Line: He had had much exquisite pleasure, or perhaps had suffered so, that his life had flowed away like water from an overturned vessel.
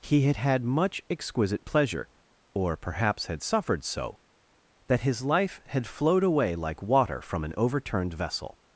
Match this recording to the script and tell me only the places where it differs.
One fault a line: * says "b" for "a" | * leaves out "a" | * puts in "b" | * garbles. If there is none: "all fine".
all fine